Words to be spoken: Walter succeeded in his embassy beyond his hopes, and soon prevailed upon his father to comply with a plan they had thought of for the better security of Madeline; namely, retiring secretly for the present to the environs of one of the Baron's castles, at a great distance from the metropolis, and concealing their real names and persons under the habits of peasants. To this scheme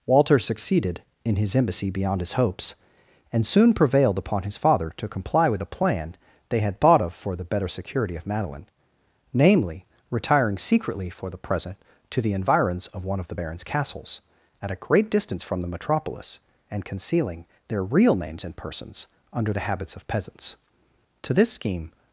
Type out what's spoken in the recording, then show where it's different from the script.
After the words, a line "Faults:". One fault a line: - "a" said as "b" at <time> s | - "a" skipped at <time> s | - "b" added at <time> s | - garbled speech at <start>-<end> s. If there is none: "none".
Walter succeeded in his embassy beyond his hopes, and soon prevailed upon his father to comply with a plan they had thought of for the better security of Madeline; namely, retiring secretly for the present to the environs of one of the Baron's castles, at a great distance from the metropolis, and concealing their real names and persons under the habits of peasants. To this scheme
Faults:
none